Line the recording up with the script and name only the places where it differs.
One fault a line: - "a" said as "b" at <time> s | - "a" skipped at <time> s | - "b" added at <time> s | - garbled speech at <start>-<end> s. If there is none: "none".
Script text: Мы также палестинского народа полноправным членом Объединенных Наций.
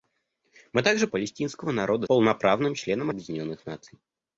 none